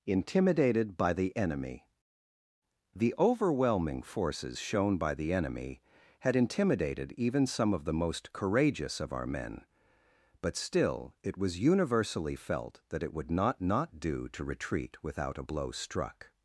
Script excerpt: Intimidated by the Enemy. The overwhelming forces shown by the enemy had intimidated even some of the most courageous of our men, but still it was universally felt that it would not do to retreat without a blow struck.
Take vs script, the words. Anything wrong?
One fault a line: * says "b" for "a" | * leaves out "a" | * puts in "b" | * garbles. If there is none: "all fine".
* puts in "not"